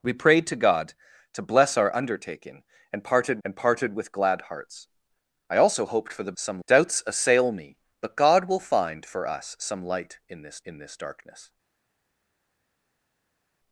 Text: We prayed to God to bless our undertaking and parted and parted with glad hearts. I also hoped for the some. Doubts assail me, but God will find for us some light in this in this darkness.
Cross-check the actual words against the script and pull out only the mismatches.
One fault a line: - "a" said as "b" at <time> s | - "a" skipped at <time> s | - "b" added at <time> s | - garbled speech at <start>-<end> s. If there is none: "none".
none